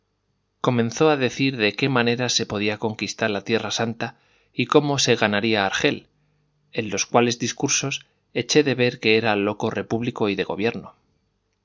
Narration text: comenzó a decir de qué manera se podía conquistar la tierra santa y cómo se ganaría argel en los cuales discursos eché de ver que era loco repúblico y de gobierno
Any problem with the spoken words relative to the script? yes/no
no